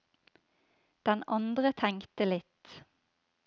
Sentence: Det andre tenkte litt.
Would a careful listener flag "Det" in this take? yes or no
yes